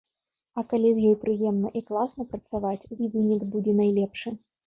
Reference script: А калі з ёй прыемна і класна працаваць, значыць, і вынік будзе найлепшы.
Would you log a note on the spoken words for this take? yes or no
yes